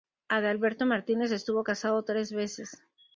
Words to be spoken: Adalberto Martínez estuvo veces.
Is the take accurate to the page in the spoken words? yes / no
no